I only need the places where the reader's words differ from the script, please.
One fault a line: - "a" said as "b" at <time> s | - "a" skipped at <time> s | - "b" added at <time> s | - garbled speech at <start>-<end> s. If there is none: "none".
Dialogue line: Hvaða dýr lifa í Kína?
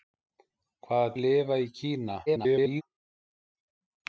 - "dýr" skipped at 1.1 s
- garbled speech at 2.3-2.8 s